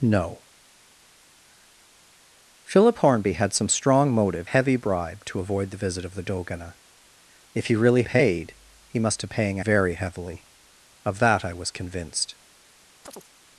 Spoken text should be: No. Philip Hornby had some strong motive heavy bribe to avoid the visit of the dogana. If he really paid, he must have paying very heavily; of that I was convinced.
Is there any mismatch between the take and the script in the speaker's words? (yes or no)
no